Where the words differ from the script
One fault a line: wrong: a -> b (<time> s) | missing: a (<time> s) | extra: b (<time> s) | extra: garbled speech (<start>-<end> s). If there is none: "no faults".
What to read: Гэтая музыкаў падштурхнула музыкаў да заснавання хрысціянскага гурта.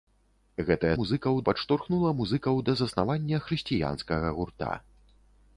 no faults